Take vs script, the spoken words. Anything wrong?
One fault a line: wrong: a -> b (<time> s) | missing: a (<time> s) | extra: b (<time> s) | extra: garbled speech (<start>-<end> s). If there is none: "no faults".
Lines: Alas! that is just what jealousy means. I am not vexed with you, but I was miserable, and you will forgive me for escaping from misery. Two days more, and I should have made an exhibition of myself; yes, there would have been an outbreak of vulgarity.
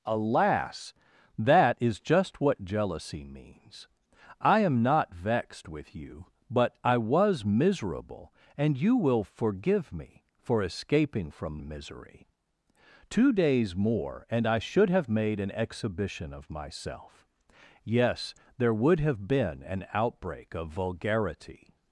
no faults